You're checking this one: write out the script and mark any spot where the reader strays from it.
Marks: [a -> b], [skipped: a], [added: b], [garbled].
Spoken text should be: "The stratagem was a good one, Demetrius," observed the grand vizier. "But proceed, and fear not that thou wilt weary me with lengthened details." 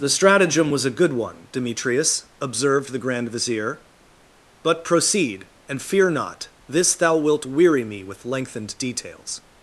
"The stratagem was a good one, Demetrius," observed the grand vizier. "But proceed, and fear not [that -> this] thou wilt weary me with lengthened details."